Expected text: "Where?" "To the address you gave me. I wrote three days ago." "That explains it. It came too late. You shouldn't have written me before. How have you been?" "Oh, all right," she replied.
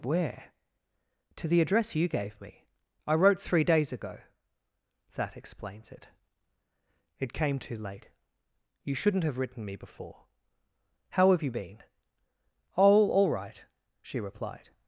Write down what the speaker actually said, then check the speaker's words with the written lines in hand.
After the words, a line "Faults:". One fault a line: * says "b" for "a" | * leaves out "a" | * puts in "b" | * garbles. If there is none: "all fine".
"Where?" "To the address you gave me. I wrote three days ago." "That explains it. It came too late. You shouldn't have written me before. How have you been?" "Oh, all right," she replied.
Faults:
all fine